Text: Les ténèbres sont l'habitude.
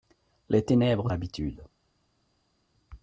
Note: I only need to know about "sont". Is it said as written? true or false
false